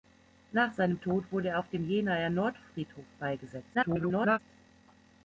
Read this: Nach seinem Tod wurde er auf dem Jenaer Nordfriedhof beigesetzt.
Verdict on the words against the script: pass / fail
fail